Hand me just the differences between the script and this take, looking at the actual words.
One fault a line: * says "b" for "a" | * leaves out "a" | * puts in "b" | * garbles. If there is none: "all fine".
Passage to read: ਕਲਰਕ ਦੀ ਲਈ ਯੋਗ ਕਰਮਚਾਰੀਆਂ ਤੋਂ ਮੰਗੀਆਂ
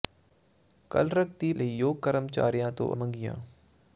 all fine